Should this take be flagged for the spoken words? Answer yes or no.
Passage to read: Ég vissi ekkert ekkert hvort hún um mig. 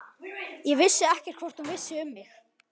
yes